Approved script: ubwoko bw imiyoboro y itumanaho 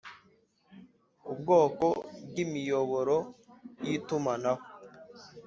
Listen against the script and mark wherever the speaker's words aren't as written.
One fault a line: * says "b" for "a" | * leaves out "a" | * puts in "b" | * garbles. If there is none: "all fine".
all fine